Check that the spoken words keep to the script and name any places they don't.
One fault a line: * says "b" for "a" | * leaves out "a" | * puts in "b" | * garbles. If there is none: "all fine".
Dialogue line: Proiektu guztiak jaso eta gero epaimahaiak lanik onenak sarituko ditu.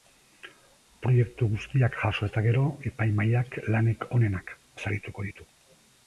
all fine